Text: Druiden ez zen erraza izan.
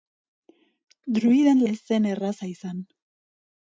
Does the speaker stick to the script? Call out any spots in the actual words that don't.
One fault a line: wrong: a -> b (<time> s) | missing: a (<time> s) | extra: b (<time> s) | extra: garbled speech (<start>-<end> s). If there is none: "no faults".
no faults